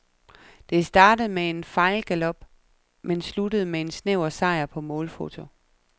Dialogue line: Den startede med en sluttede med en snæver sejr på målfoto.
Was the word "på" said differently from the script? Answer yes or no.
no